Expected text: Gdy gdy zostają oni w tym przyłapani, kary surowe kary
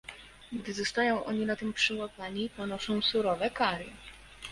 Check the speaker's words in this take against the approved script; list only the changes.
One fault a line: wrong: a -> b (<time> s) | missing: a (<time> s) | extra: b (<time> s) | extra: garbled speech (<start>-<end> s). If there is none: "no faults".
missing: gdy (0.7 s)
wrong: w -> na (1.4 s)
wrong: kary -> ponoszą (2.5 s)